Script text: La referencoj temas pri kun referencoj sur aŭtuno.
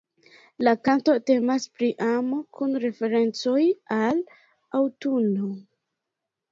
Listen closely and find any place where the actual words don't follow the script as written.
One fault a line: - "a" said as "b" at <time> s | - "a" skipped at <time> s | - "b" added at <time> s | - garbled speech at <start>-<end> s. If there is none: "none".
- "referencoj" said as "kanto" at 0.9 s
- "amo" added at 2.1 s
- "sur" said as "al" at 4.0 s